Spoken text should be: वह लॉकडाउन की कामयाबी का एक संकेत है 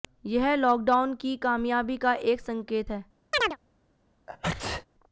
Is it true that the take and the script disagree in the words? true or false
true